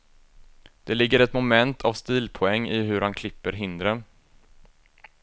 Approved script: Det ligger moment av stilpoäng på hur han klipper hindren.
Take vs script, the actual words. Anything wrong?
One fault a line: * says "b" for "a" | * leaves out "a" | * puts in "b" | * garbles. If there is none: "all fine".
* puts in "ett"
* says "i" for "på"